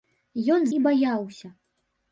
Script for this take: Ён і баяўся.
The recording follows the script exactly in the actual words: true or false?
true